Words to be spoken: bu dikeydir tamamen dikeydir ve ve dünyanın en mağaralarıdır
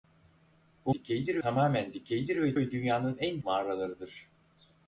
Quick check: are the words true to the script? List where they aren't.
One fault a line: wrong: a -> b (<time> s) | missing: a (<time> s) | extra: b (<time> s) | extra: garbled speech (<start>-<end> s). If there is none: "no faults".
no faults